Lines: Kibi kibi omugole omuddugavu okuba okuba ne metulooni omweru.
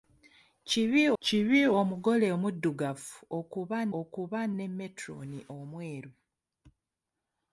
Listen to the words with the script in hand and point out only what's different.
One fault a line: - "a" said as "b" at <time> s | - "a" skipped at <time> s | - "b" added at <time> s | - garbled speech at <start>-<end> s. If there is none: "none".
none